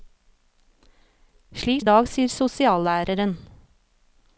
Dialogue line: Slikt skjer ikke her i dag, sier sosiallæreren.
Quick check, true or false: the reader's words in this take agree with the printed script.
false